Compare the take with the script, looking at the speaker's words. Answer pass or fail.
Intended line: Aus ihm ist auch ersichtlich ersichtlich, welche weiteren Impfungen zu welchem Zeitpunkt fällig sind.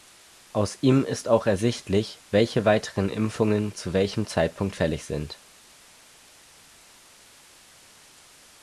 fail